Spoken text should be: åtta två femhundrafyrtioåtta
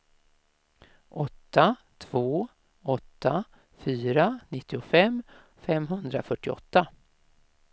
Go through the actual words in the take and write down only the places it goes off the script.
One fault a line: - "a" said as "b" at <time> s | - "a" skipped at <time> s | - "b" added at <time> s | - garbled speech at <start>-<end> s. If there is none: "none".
- "åtta fyra nittiofem" added at 2.8 s